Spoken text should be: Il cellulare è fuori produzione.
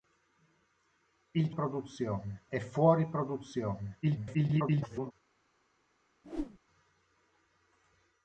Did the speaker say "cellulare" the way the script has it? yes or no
no